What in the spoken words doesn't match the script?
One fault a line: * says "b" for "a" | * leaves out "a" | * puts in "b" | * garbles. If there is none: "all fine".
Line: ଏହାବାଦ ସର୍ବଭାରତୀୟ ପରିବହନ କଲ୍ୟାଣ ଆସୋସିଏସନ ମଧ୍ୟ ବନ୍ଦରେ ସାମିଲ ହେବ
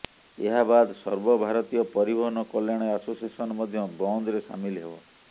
all fine